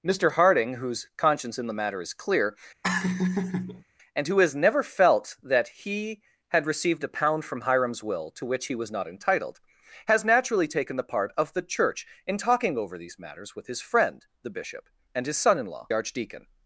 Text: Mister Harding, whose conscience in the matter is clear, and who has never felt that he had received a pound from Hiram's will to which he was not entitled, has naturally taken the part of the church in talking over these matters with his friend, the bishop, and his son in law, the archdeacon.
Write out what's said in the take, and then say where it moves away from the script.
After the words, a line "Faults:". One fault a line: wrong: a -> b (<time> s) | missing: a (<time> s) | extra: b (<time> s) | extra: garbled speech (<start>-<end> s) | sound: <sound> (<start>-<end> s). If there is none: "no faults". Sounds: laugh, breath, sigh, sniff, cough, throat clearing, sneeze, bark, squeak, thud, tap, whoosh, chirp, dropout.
Mister Harding, whose conscience in the matter is clear, and who has never felt that he had received a pound from Hiram's will to which he was not entitled, has naturally taken the part of the church in talking over these matters with his friend, the bishop, and his son in law, archdeacon.
Faults:
sound: laugh (2.8-3.8 s)
missing: the (15.9 s)